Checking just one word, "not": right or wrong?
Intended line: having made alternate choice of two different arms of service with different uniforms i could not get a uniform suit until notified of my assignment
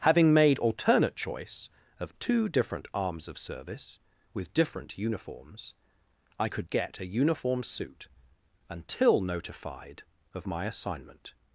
wrong